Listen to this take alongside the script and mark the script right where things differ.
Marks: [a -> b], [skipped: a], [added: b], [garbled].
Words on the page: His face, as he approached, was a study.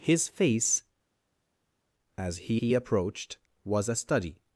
His face, as he [added: he] approached, was a study.